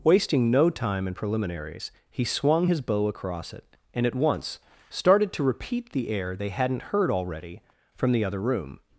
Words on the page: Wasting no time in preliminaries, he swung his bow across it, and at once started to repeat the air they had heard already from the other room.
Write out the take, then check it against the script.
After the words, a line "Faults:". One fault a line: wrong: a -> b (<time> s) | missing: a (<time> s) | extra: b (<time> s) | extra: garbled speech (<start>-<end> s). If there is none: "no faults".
Wasting no time in preliminaries, he swung his bow across it, and at once started to repeat the air they hadn't heard already from the other room.
Faults:
wrong: had -> hadn't (6.5 s)